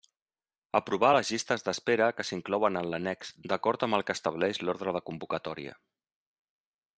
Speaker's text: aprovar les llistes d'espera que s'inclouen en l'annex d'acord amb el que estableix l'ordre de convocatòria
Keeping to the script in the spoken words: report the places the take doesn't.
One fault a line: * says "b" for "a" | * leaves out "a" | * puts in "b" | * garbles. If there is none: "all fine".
all fine